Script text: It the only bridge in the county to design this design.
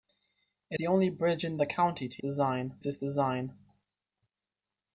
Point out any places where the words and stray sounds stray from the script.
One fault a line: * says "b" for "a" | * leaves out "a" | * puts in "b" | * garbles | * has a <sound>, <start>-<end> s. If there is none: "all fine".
all fine